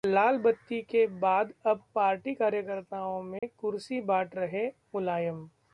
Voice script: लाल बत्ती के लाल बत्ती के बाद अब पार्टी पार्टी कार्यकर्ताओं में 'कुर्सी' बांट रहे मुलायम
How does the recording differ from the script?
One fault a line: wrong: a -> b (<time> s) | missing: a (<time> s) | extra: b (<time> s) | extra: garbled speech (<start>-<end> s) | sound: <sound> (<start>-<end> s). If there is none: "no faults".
missing: लाल बत्ती के (1.1 s)
missing: पार्टी (2.3 s)
sound: dropout (3.4-3.4 s)